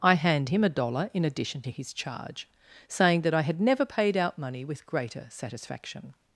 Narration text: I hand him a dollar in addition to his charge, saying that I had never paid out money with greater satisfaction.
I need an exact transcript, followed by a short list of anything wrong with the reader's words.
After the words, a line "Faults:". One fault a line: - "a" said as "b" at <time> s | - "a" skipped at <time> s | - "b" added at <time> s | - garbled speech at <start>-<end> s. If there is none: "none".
I hand him a dollar in addition to his charge, saying that I had never paid out money with greater satisfaction.
Faults:
none